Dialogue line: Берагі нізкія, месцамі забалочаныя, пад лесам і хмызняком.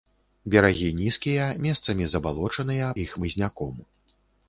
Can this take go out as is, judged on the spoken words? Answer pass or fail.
fail